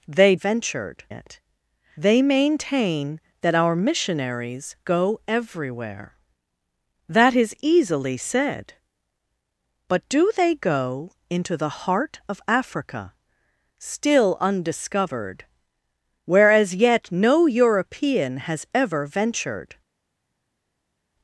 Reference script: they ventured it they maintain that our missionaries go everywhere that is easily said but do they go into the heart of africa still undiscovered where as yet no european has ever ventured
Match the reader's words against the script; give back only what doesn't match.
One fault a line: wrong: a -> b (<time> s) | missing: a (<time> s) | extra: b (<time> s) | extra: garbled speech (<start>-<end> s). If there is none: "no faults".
no faults